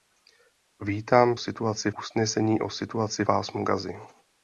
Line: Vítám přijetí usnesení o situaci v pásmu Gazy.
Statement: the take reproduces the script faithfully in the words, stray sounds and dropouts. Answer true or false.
false